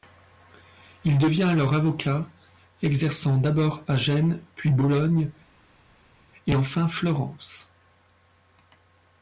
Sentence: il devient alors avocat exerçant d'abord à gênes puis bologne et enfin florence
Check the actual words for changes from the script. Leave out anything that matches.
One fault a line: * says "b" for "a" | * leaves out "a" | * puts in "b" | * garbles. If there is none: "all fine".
all fine